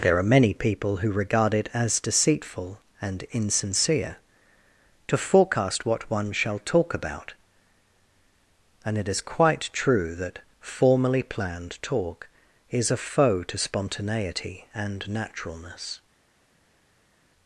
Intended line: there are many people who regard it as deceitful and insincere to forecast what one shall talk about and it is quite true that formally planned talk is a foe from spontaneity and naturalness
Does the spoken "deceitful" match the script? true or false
true